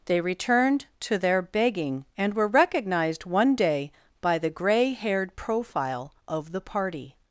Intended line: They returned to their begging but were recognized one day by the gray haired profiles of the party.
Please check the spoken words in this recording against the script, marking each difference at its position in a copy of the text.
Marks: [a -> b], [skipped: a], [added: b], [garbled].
They returned to their begging [but -> and] were recognized one day by the gray haired [profiles -> profile] of the party.